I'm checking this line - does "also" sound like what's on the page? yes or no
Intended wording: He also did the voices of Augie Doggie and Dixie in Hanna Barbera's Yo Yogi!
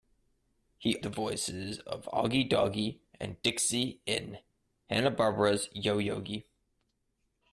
no